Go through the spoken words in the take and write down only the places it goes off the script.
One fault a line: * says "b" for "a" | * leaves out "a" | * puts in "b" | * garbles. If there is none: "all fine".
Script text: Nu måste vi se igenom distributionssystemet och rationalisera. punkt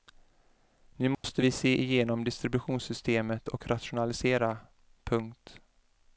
all fine